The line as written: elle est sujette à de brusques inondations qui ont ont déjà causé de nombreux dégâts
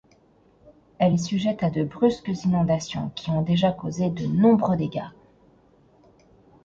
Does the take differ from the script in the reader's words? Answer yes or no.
yes